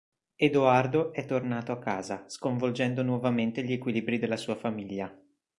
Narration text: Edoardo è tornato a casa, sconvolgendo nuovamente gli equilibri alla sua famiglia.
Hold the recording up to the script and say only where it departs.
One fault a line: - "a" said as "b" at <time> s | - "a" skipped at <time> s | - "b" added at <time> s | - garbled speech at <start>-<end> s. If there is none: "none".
- "alla" said as "della" at 4.2 s